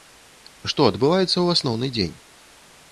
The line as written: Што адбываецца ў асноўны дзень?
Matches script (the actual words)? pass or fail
pass